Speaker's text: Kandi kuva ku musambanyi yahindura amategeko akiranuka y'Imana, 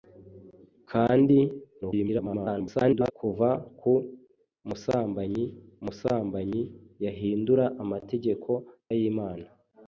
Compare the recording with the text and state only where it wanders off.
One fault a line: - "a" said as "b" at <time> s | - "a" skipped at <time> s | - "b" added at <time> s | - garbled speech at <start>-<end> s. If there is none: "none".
- garbled speech at 1.8-3.1 s
- "musambanyi" added at 5.8 s
- "akiranuka" skipped at 8.5 s